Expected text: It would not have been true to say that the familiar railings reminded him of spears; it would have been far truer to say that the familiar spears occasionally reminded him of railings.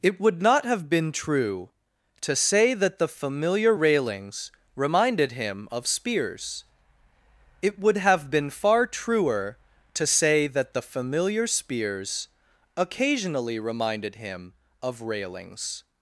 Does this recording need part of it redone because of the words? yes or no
no